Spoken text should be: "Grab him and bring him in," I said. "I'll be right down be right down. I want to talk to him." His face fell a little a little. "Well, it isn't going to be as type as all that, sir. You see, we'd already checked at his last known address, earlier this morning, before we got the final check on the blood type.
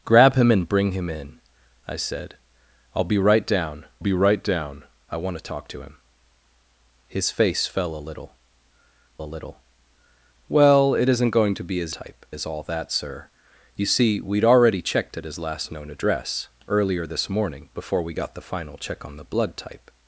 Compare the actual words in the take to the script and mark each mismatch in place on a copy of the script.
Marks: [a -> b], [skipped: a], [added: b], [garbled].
"Grab him and bring him in," I said. "I'll be right down be right down. I want to talk to him." His face fell a little a little. "Well, it isn't going to be as type as all that, sir. You see, we'd already checked at his last known address, earlier this morning, before we got the final check on the blood type.